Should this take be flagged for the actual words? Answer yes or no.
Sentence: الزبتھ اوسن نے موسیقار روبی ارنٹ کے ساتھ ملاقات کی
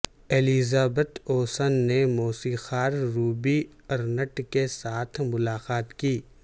no